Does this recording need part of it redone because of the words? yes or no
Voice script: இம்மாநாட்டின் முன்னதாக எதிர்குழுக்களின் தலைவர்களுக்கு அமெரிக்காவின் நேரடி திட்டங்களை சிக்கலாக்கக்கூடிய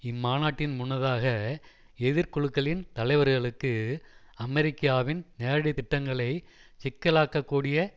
no